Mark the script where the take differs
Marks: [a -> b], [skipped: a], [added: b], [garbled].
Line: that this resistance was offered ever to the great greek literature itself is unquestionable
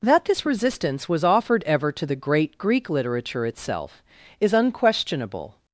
that this resistance was offered ever to the great greek literature itself is unquestionable